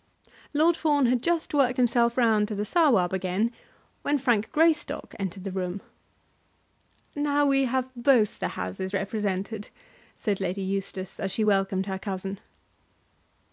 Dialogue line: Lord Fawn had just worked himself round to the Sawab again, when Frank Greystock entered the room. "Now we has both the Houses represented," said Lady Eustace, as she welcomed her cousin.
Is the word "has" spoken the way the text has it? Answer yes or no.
no